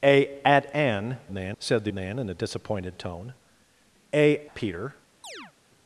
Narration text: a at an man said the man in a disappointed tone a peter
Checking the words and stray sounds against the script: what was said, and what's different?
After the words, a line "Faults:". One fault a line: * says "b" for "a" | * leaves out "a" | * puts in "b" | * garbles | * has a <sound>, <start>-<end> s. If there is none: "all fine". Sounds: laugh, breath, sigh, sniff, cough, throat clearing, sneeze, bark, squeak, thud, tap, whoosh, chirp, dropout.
a at an man said the man in a disappointed tone a peter
Faults:
* has a chirp, 5.2-5.5 s